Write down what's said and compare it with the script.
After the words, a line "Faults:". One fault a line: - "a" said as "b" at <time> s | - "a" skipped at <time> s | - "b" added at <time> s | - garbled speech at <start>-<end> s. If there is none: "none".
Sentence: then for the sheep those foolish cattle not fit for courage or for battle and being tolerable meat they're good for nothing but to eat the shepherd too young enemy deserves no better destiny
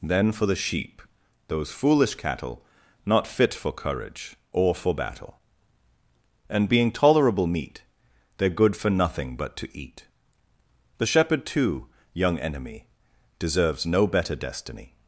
then for the sheep those foolish cattle not fit for courage or for battle and being tolerable meat they're good for nothing but to eat the shepherd too young enemy deserves no better destiny
Faults:
none